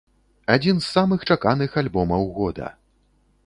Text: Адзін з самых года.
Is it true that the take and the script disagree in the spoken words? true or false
true